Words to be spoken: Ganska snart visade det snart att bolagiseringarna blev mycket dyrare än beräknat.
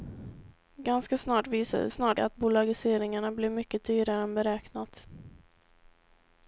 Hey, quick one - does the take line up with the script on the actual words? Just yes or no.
yes